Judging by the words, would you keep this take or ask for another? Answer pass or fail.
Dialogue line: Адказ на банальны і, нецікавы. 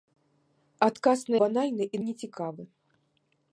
pass